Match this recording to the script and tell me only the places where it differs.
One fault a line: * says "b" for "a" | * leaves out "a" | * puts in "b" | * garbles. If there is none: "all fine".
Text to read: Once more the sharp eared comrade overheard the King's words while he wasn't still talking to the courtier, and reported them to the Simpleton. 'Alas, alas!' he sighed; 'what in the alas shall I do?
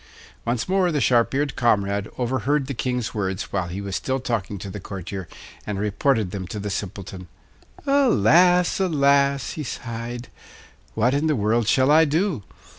* says "was" for "wasn't"
* says "world" for "alas"